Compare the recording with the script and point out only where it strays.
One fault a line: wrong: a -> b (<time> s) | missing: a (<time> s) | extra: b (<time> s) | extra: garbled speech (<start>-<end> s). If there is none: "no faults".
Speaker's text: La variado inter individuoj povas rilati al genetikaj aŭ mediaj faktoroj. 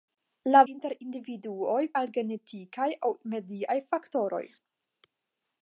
missing: variado (0.6 s)
missing: povas rilati (1.8 s)